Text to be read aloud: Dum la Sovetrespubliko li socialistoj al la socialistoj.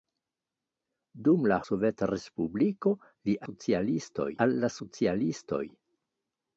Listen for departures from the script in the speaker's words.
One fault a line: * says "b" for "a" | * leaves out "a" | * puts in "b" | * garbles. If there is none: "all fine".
all fine